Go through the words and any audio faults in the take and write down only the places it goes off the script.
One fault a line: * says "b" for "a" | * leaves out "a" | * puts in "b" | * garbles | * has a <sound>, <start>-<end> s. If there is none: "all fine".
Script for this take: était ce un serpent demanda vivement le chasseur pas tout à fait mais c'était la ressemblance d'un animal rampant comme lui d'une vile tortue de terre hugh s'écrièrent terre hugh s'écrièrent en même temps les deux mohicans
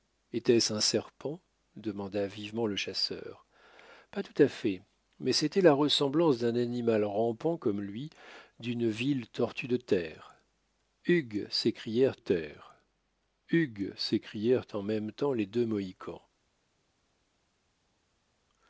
all fine